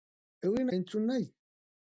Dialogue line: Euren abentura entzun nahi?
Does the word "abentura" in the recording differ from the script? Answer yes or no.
yes